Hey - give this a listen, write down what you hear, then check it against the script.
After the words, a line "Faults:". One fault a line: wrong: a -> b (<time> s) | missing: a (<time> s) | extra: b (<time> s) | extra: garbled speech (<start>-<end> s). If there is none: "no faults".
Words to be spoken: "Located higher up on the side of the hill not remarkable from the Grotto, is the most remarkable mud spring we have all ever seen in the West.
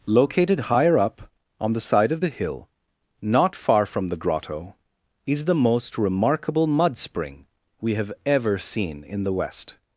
"Located higher up on the side of the hill not far from the Grotto, is the most remarkable mud spring we have ever seen in the West.
Faults:
wrong: remarkable -> far (3.6 s)
missing: all (8.1 s)